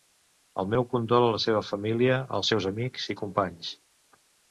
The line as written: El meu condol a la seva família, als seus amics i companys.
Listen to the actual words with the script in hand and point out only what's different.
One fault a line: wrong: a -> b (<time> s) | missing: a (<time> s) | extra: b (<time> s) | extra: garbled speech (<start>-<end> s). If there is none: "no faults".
no faults